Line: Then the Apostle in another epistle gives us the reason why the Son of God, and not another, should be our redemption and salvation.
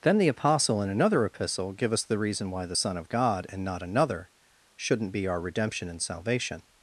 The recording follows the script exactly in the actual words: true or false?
false